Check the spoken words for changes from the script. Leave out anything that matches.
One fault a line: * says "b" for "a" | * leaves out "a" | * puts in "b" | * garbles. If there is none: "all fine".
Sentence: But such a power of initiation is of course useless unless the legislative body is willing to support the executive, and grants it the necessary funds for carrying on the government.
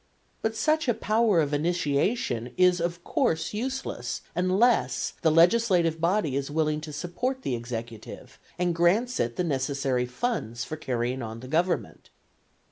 all fine